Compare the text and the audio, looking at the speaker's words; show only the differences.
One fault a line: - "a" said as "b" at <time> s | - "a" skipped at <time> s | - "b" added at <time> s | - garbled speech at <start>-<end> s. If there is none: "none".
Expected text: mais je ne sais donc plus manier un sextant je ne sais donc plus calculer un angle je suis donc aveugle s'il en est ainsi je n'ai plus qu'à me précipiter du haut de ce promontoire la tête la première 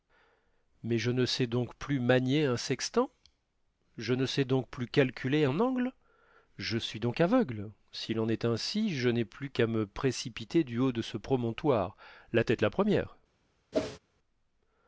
none